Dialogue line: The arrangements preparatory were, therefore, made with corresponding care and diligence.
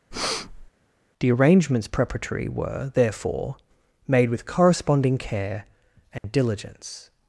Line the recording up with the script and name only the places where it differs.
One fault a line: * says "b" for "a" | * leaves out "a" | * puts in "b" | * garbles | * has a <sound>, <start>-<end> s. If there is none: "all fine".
* has a breath, 0.1-0.7 s
* has a dropout, 6.2-6.2 s